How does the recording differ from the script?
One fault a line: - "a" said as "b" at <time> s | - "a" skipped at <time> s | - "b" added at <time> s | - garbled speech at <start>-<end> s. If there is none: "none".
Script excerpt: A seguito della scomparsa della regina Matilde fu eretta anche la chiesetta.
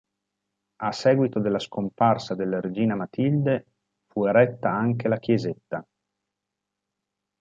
none